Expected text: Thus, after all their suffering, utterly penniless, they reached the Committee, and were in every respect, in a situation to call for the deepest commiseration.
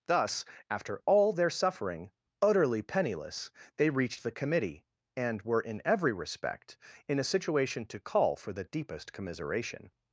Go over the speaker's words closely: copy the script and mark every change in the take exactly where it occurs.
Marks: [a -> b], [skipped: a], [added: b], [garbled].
Thus, after all their suffering, utterly penniless, they reached the Committee, and were in every respect, in a situation to call for the deepest commiseration.